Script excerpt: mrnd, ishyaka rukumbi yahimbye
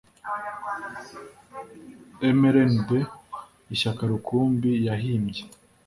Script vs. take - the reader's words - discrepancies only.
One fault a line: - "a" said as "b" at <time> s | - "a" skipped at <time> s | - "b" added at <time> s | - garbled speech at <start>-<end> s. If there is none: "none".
none